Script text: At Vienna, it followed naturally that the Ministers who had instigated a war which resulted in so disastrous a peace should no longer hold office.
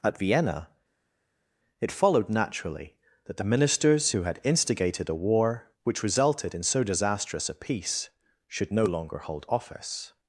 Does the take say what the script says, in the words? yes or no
yes